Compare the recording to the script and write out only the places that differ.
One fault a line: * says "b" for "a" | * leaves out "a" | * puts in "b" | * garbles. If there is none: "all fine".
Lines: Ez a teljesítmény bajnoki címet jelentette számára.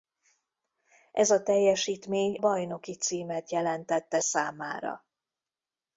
all fine